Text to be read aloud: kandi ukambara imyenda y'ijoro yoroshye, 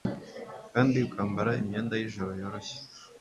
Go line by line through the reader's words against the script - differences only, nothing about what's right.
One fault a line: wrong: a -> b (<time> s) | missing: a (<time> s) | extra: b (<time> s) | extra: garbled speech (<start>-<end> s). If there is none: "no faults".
no faults